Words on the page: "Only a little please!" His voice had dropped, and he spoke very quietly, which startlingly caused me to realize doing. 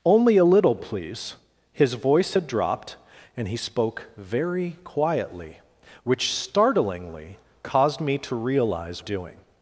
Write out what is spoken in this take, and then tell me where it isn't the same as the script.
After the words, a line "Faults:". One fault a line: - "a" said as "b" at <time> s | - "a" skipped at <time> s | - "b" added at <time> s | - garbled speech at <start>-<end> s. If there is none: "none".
"Only a little please!" His voice had dropped, and he spoke very quietly, which startlingly caused me to realize doing.
Faults:
none